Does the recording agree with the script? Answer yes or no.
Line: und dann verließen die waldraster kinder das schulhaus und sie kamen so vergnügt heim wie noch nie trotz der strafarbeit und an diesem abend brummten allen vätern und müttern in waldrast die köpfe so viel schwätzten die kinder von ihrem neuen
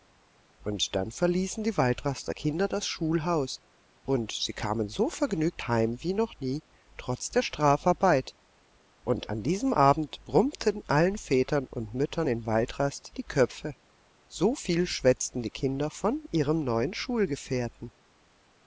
yes